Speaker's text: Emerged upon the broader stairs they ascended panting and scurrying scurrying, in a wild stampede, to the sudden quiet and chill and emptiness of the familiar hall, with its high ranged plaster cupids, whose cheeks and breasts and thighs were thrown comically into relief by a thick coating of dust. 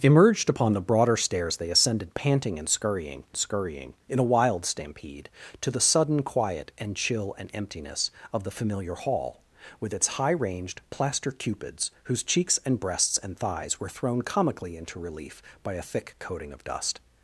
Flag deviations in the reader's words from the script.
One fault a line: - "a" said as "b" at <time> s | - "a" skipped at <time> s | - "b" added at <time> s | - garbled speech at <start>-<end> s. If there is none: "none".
none